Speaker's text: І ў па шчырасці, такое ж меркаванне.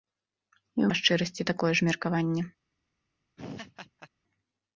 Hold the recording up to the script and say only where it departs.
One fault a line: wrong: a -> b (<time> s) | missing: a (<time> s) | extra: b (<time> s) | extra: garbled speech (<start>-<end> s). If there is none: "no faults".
no faults